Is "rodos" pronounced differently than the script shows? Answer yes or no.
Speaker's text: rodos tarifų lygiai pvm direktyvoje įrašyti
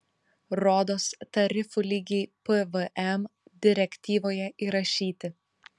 no